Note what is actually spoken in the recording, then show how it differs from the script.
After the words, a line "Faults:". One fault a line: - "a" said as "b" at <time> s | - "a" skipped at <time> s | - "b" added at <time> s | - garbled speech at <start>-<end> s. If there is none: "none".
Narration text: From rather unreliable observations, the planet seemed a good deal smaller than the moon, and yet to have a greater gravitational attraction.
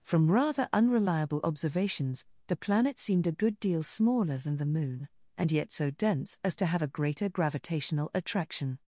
From rather unreliable observations, the planet seemed a good deal smaller than the moon, and yet so dense as to have a greater gravitational attraction.
Faults:
- "so dense as" added at 5.7 s